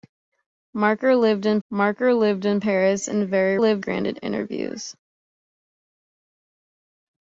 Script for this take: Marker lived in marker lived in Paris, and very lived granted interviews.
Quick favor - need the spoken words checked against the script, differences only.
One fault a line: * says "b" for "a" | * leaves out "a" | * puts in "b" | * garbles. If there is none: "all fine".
all fine